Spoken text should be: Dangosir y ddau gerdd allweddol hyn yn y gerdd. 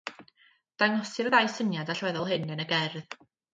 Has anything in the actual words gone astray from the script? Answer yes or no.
yes